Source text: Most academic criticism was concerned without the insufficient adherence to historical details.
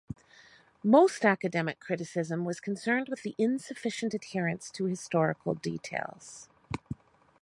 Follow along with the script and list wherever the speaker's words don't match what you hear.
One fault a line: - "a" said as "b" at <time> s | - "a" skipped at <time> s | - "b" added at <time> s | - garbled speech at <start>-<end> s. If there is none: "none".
- "without" said as "with" at 3.1 s